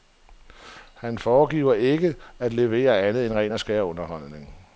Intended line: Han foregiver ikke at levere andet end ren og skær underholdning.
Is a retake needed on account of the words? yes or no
no